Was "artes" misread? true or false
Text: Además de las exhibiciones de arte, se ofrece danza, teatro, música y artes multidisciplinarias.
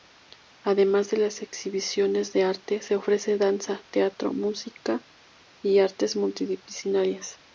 false